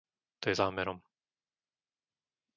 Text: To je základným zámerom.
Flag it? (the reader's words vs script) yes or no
yes